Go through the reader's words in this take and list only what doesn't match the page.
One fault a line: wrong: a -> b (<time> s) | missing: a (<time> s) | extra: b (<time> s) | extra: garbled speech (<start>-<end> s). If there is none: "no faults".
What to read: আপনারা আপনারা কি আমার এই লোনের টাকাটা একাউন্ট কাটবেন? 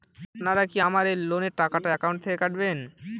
missing: আপনারা (0.6 s)
extra: থেকে (2.2 s)